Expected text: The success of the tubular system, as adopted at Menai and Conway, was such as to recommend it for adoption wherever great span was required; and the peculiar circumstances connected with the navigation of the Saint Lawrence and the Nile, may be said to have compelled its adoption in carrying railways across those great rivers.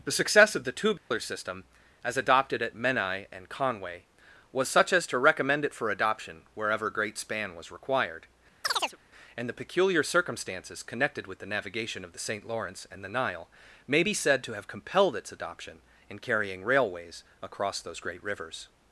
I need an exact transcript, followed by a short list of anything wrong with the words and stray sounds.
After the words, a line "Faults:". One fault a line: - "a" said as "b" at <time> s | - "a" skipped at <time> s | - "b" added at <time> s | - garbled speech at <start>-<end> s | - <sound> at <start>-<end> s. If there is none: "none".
The success of the tubular system, as adopted at Menai and Conway, was such as to recommend it for adoption wherever great span was required; and the peculiar circumstances connected with the navigation of the Saint Lawrence and the Nile, may be said to have compelled its adoption in carrying railways across those great rivers.
Faults:
- dropout at 1.0-1.1 s
- chirp at 8.6-9.0 s